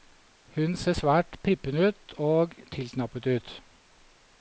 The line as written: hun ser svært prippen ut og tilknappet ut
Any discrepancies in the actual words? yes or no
no